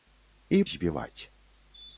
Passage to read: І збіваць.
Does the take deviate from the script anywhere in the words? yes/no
no